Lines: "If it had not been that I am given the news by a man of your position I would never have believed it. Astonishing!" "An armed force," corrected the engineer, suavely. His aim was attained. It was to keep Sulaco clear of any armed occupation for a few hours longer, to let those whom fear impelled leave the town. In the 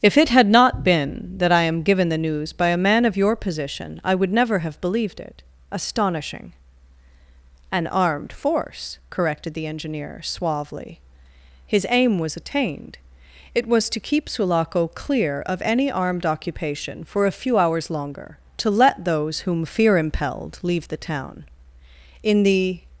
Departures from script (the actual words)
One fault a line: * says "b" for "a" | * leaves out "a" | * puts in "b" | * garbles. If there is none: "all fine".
all fine